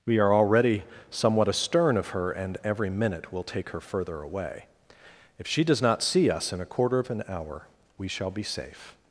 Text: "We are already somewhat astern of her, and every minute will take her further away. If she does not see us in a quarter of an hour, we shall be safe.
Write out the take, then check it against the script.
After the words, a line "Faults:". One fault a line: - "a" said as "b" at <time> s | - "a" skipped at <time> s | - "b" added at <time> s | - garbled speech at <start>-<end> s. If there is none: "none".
"We are already somewhat astern of her, and every minute will take her further away. If she does not see us in a quarter of an hour, we shall be safe.
Faults:
none